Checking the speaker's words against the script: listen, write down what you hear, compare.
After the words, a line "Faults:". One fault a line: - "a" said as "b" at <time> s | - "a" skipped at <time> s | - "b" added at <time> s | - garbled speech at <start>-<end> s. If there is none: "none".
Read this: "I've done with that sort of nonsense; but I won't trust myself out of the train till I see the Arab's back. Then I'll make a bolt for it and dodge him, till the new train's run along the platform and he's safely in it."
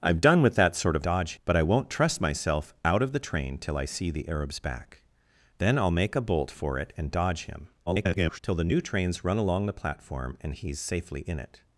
"I've done with that sort of dodge; but I won't trust myself out of the train till I see the Arab's back. Then I'll make a bolt for it and dodge him, [garbled] till the new train's run along the platform and he's safely in it."
Faults:
- "nonsense" said as "dodge" at 1.0 s
- garbled speech at 7.9-8.4 s